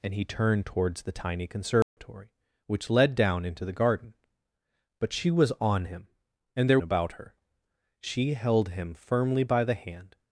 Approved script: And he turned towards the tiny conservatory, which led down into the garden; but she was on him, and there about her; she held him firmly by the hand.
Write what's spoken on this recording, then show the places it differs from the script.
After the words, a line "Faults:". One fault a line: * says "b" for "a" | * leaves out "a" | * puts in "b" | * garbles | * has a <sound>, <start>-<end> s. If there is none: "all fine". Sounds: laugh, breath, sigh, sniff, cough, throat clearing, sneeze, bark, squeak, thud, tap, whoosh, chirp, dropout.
And he turned towards the tiny conservatory, which led down into the garden; but she was on him, and there about her; she held him firmly by the hand.
Faults:
* has a dropout, 1.8-2.0 s